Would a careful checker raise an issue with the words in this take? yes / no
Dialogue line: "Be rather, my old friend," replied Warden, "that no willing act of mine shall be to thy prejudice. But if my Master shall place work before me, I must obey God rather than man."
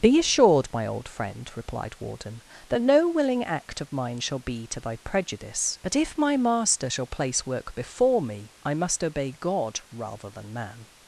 yes